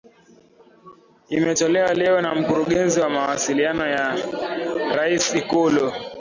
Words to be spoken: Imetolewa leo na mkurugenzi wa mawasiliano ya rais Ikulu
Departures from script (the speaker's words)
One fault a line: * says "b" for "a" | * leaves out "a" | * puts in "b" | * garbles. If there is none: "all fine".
all fine